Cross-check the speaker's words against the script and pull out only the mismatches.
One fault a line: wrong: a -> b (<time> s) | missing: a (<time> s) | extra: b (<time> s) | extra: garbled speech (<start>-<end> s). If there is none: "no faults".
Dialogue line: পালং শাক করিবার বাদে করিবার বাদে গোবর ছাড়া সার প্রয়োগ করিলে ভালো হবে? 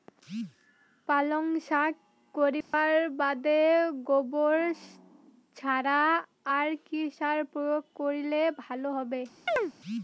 wrong: করিবার বাদে গোবর ছাড়া -> গোবর ছাড়া আর কি (4.1 s)